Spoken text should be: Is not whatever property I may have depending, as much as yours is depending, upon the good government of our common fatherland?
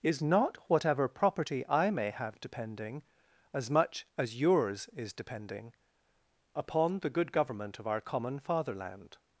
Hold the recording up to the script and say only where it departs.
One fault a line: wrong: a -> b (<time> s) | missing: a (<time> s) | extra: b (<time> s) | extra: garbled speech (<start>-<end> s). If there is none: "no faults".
no faults